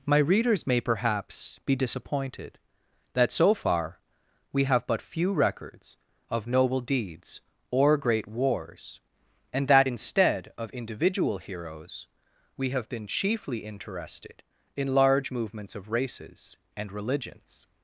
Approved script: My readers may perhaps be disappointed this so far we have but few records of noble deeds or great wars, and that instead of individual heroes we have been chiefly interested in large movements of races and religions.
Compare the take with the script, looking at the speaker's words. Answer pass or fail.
fail